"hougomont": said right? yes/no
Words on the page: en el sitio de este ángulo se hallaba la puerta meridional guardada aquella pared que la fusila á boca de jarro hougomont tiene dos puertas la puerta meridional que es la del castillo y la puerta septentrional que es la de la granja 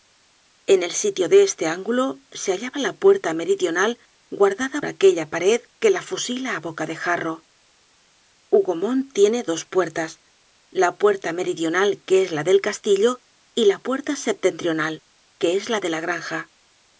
yes